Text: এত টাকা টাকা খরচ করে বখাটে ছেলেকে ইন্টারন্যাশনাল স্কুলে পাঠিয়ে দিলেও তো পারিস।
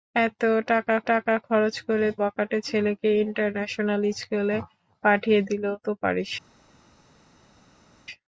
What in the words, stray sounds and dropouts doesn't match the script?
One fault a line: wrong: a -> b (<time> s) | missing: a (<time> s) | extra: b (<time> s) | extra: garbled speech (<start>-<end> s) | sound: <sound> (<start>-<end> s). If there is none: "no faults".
no faults